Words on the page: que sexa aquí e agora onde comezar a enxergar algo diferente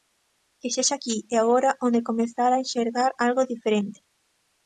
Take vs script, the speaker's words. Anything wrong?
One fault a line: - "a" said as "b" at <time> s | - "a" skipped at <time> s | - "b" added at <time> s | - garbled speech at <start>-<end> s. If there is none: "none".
none